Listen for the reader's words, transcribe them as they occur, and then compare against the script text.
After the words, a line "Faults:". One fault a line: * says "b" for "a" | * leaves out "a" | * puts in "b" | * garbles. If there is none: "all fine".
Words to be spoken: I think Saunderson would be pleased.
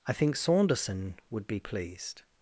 I think Saunderson would be pleased.
Faults:
all fine